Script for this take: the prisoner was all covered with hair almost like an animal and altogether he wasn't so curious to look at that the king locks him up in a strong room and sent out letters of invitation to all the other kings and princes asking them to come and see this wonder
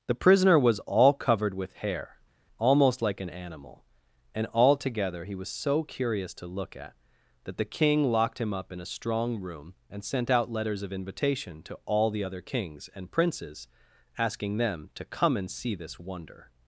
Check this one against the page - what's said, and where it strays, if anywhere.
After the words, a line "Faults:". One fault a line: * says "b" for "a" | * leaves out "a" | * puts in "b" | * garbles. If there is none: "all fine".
the prisoner was all covered with hair almost like an animal and altogether he was so curious to look at that the king locked him up in a strong room and sent out letters of invitation to all the other kings and princes asking them to come and see this wonder
Faults:
* says "was" for "wasn't"
* says "locked" for "locks"